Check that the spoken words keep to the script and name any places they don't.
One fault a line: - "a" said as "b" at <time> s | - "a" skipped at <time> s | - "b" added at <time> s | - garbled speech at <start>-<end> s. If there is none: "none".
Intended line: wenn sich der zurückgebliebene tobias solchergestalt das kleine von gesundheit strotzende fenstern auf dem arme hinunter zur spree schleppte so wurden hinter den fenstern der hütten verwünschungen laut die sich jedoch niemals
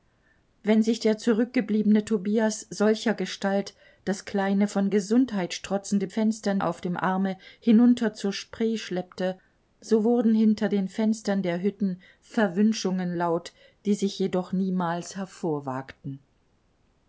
none